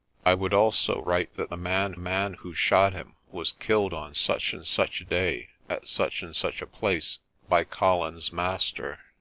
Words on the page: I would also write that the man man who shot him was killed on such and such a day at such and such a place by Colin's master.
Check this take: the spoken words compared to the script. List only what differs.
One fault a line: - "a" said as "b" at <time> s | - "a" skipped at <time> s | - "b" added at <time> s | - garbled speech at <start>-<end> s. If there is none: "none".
none